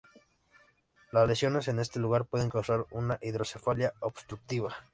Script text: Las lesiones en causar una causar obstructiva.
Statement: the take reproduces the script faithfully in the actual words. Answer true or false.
false